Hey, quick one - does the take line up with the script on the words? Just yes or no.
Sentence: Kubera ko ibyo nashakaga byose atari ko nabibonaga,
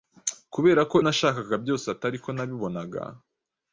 no